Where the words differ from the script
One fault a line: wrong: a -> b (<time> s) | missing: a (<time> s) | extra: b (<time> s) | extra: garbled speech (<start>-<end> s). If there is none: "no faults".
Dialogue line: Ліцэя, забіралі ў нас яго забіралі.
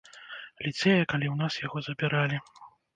wrong: забіралі -> калі (1.1 s)